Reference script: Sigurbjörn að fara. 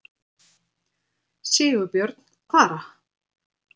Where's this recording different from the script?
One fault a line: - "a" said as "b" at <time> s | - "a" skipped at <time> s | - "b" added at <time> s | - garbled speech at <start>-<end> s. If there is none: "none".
none